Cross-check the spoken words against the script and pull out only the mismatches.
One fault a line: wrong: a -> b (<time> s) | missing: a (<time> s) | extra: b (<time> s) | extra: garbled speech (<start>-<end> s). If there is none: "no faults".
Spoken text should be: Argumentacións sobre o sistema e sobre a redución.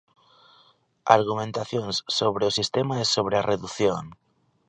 no faults